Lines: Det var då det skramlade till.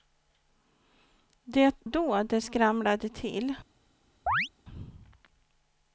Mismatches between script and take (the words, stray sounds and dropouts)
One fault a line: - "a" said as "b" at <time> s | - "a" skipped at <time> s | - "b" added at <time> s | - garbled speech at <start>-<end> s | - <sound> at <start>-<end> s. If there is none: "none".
- "var" skipped at 1.8 s
- chirp at 4.3-4.5 s